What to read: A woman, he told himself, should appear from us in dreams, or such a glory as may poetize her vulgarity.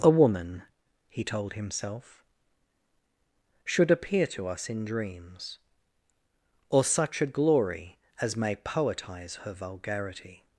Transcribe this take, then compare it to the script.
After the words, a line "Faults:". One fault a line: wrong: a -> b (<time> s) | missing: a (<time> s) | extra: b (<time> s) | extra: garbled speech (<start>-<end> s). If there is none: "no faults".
A woman, he told himself, should appear to us in dreams, or such a glory as may poetize her vulgarity.
Faults:
wrong: from -> to (4.3 s)